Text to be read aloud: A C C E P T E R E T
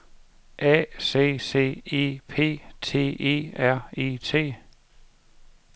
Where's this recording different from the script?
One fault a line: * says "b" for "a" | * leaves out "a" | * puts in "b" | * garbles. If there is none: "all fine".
all fine